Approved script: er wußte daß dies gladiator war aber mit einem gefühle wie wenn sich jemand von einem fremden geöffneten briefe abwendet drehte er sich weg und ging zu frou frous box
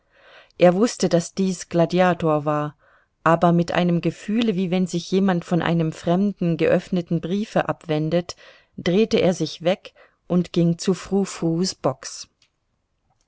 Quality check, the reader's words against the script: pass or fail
pass